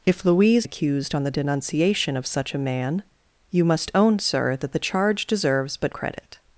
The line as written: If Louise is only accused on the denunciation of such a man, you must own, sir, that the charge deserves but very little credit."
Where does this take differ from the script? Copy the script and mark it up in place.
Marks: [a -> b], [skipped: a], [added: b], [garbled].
If Louise [skipped: is only] accused on the denunciation of such a man, you must own, sir, that the charge deserves but [skipped: very little] credit."